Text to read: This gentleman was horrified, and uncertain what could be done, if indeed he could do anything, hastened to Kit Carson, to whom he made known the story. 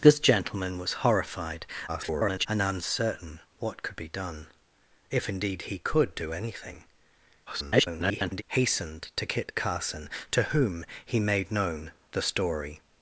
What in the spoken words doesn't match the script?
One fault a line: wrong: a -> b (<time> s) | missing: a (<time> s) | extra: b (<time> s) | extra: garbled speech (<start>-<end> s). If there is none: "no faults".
extra: garbled speech (1.9-2.5 s)
extra: garbled speech (7.5-8.4 s)